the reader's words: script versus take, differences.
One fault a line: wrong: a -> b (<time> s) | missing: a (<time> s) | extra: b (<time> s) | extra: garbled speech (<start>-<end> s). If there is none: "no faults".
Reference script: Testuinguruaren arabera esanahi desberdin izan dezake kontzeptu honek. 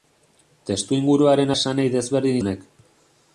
missing: arabera (1.5 s)
missing: izan dezake kontzeptu (2.4 s)